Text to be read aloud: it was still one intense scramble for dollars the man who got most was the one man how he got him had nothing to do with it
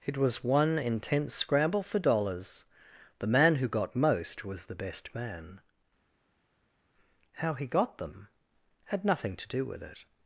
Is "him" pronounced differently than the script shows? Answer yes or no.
yes